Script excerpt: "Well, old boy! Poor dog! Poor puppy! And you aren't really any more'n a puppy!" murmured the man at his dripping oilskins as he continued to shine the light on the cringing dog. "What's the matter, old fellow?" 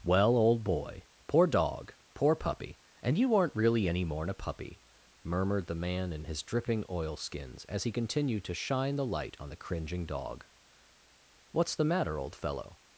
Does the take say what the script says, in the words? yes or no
no